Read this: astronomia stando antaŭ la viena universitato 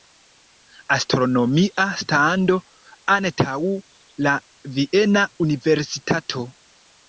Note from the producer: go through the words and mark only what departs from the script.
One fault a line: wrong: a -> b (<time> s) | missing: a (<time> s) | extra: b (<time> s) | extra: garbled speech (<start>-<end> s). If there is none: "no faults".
no faults